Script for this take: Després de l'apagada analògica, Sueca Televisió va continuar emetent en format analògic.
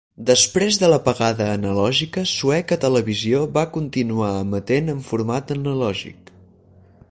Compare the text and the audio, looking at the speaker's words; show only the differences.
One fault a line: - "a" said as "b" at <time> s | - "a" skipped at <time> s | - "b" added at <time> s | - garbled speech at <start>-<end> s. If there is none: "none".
none